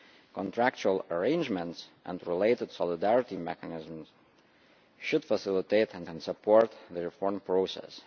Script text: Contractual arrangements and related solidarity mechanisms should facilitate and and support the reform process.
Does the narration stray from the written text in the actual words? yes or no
no